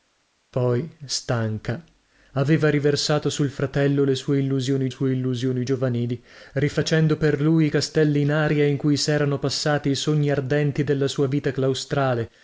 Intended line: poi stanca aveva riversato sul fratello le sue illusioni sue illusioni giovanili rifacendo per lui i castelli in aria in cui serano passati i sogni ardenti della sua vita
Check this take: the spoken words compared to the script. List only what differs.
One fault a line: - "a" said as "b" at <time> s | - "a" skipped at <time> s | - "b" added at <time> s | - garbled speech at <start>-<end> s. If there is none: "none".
none